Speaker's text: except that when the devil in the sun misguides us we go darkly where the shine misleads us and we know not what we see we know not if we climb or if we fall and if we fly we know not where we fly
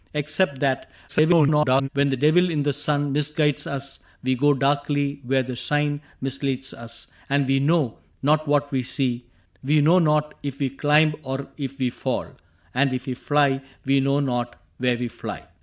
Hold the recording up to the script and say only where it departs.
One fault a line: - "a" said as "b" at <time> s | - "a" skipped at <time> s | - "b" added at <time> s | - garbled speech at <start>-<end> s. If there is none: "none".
- garbled speech at 1.1-1.9 s